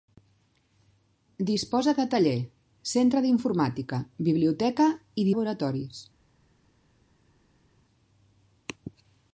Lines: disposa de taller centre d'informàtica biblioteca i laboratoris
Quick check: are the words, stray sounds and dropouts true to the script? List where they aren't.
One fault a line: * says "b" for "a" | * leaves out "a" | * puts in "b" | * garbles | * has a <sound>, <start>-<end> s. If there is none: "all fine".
all fine